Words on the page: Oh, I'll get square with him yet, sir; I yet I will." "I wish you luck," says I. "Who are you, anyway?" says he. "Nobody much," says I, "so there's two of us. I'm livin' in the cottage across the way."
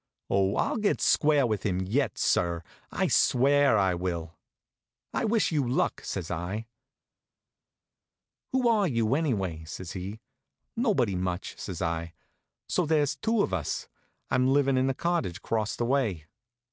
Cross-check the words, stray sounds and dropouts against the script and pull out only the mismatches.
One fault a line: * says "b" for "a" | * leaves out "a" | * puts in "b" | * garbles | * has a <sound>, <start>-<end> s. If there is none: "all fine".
* says "swear" for "yet"